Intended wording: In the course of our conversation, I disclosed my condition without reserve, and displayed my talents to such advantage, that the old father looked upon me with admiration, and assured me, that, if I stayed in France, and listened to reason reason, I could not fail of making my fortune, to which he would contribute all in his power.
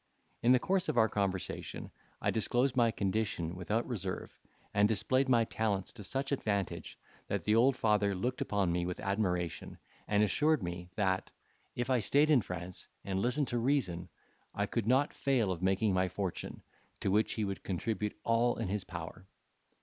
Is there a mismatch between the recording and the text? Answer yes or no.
yes